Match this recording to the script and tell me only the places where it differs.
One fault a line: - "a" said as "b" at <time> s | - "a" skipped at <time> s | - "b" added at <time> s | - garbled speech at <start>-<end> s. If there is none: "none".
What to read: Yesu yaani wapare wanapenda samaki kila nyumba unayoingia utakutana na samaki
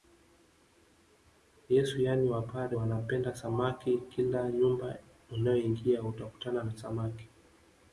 none